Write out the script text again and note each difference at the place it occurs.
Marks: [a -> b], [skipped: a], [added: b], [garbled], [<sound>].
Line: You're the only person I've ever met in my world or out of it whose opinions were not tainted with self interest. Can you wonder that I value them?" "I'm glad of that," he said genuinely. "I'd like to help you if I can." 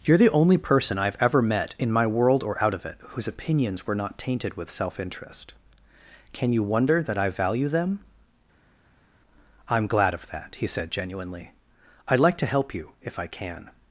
You're the only person I've ever met in my world or out of it whose opinions were not tainted with self interest. Can you wonder that I value them?" "I'm glad of that," he said genuinely. "I'd like to help you if I can."